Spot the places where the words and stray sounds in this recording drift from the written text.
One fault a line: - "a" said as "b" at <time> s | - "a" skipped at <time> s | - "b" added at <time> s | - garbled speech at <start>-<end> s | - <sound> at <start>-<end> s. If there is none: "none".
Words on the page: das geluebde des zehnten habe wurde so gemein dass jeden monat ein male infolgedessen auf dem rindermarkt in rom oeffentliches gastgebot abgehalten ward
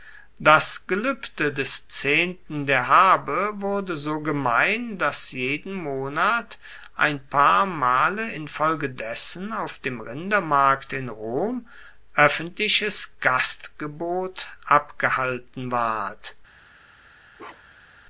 - "der" added at 2.6 s
- "paar" added at 7.3 s
- bark at 17.4-18.0 s